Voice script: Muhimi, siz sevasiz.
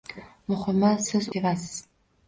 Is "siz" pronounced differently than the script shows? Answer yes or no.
no